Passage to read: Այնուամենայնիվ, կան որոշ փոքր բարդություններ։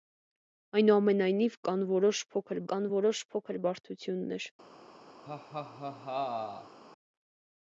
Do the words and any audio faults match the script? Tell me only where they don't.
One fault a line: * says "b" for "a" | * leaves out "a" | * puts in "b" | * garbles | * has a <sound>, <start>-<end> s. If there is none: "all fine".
* puts in "կան որոշ փոքր"
* has a laugh, 5.2-6.8 s